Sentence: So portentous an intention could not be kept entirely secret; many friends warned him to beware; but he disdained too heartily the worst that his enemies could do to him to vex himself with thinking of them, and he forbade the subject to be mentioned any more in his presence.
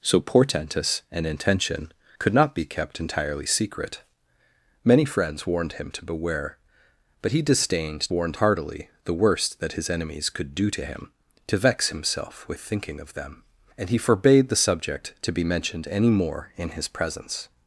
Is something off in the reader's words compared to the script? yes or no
yes